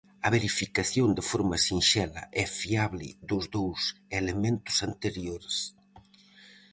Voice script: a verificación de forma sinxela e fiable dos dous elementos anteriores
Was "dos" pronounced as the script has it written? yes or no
yes